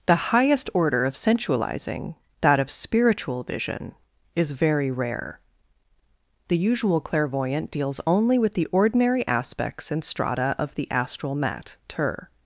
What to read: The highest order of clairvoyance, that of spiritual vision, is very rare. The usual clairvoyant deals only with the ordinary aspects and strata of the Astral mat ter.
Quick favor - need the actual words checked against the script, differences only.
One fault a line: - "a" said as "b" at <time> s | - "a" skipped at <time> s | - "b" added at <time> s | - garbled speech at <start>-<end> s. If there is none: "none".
- "clairvoyance" said as "sensualizing" at 1.1 s